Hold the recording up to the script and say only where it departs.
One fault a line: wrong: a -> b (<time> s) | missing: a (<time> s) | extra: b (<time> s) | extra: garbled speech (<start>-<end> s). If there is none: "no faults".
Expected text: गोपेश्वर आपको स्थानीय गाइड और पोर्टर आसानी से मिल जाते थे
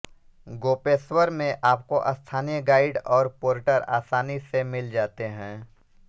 extra: में (1.3 s)
wrong: थे -> हैं (5.3 s)